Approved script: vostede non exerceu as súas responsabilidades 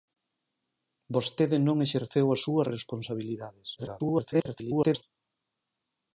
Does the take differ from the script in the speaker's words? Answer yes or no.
yes